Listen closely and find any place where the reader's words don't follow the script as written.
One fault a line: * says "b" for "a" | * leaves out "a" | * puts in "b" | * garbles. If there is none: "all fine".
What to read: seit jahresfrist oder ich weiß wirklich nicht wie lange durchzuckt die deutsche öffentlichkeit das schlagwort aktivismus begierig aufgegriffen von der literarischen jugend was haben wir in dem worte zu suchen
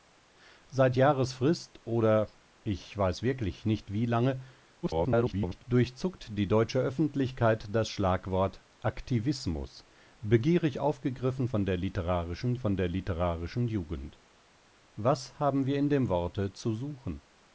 * garbles
* puts in "von der literarischen"